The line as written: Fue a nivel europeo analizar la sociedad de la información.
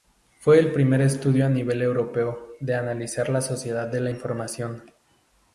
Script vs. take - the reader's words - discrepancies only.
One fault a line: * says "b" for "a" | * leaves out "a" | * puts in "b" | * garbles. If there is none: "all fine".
* puts in "el primer estudio"
* puts in "de"